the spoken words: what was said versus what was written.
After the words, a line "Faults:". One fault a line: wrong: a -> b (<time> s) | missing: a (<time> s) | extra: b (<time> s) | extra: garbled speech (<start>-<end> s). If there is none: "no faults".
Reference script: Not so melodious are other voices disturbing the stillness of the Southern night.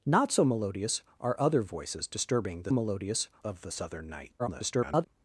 Not so melodious are other voices disturbing the melodious of the Southern night. [garbled]
Faults:
wrong: stillness -> melodious (2.7 s)
extra: garbled speech (4.4-5.1 s)